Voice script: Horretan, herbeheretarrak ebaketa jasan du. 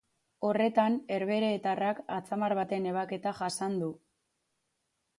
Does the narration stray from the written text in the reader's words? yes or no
yes